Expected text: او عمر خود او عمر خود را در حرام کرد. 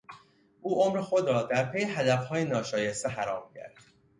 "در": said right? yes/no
no